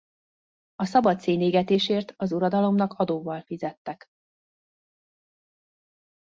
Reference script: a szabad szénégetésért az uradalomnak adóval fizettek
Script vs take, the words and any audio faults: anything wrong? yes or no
no